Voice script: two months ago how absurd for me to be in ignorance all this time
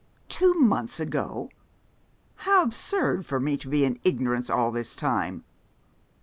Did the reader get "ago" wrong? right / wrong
right